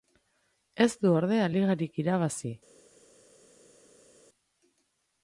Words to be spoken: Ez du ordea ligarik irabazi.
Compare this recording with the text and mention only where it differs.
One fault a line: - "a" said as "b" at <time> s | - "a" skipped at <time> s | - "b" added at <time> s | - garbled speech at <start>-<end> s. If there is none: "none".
none